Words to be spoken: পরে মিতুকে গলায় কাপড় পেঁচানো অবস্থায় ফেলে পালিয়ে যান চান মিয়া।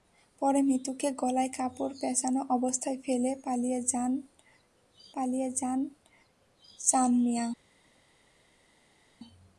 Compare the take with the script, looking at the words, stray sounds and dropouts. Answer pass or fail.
fail